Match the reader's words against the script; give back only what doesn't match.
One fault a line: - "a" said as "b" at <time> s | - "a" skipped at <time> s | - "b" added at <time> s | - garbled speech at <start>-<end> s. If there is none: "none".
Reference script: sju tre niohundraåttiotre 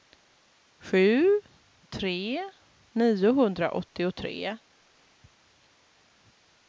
none